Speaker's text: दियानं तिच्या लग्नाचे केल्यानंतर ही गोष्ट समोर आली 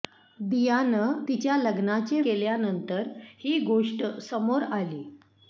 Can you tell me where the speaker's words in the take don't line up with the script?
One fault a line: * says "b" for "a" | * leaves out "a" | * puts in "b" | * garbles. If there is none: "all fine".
all fine